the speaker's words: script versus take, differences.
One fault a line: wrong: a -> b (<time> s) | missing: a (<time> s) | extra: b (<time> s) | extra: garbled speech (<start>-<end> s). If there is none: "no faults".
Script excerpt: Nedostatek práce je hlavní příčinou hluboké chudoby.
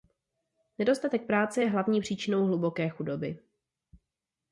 no faults